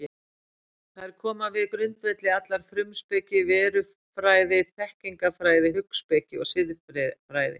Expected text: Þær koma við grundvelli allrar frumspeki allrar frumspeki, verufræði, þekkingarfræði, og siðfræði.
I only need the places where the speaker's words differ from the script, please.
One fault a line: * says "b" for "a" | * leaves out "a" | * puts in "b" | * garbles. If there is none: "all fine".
* leaves out "allrar frumspeki"
* puts in "hugspeki"